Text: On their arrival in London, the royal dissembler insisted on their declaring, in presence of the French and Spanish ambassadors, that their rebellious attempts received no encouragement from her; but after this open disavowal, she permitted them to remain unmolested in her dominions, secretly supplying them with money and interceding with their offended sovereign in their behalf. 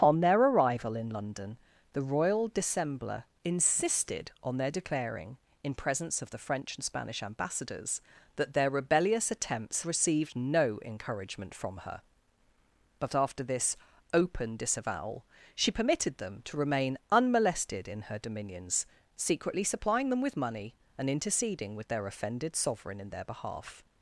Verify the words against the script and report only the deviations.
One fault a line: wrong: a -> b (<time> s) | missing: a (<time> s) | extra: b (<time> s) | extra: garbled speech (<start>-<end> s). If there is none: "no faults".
no faults